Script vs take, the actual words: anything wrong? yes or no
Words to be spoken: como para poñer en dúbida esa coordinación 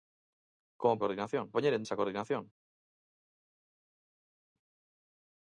yes